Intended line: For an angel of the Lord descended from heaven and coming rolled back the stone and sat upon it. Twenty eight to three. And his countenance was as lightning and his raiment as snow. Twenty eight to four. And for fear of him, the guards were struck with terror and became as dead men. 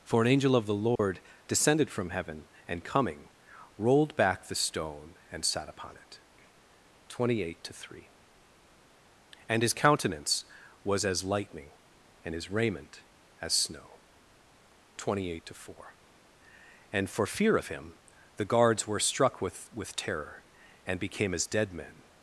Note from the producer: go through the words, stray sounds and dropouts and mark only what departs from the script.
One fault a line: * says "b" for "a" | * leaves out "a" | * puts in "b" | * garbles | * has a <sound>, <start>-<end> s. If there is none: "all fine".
* has a dropout, 1.0-1.0 s
* puts in "with"